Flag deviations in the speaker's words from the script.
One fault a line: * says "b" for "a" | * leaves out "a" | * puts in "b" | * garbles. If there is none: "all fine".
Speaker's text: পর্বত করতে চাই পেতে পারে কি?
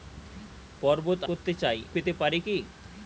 all fine